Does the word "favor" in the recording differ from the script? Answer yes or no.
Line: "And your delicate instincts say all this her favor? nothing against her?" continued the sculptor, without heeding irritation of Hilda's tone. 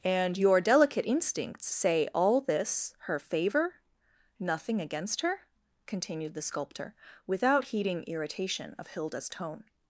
no